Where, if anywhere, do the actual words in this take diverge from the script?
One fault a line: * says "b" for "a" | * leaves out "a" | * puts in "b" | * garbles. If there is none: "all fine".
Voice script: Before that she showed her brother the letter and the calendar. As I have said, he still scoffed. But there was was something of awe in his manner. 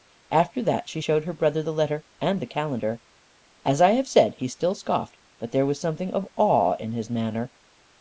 * says "After" for "Before"
* leaves out "was"